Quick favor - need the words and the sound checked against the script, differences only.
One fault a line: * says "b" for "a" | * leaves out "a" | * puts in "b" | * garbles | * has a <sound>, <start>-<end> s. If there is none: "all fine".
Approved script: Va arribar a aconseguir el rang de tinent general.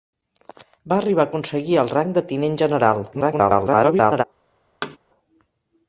* garbles
* has a thud, 4.8-5.0 s